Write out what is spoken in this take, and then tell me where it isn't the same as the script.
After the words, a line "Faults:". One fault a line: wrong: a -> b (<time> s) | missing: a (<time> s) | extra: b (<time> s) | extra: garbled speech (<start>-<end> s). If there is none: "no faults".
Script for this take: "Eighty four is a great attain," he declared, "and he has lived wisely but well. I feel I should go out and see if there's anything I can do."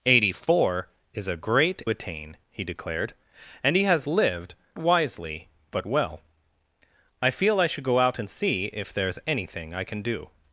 "Eighty four is a great attain," he declared, "and he has lived wisely but well. I feel I should go out and see if there's anything I can do."
Faults:
no faults